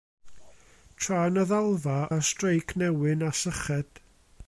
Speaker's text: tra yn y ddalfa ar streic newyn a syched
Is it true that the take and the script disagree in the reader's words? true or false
false